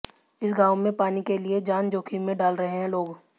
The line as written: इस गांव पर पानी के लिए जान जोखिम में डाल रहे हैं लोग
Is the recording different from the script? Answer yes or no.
yes